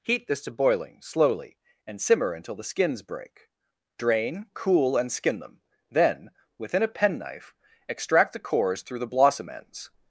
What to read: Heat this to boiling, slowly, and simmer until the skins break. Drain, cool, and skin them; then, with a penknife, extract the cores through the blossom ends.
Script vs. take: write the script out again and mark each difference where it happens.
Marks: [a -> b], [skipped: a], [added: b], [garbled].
Heat this to boiling, slowly, and simmer until the skins break. Drain, cool, and skin them; then, [with -> within] a penknife, extract the cores through the blossom ends.